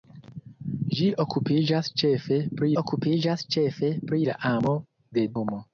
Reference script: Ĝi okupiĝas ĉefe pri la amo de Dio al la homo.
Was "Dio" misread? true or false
true